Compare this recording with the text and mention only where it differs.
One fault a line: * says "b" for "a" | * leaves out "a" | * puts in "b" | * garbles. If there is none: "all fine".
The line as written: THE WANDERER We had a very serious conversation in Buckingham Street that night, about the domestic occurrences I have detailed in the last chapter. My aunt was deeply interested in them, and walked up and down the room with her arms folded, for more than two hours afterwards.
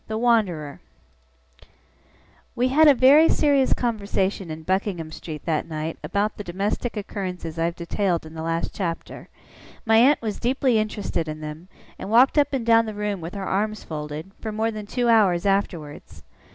all fine